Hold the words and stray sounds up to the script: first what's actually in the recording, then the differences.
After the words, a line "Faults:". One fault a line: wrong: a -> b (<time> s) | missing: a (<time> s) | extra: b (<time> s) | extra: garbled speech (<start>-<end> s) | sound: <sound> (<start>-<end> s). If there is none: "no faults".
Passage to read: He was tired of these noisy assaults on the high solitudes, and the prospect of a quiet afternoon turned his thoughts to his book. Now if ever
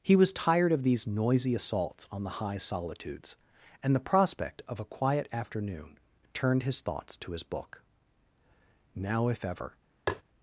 He was tired of these noisy assaults on the high solitudes, and the prospect of a quiet afternoon turned his thoughts to his book. Now if ever
Faults:
sound: tap (10.1-10.2 s)